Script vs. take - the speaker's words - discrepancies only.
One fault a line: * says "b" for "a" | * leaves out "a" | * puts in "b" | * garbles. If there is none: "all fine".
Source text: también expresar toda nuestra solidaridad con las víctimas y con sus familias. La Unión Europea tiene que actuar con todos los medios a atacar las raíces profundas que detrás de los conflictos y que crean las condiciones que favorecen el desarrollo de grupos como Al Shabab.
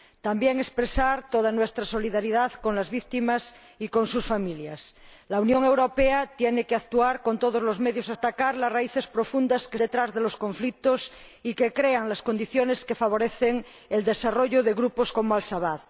all fine